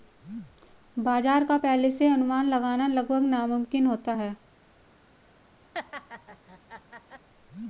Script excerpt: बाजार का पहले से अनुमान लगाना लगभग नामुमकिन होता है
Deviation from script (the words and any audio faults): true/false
true